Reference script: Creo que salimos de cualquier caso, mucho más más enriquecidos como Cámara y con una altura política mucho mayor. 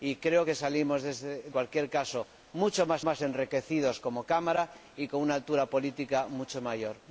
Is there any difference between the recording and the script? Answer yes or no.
no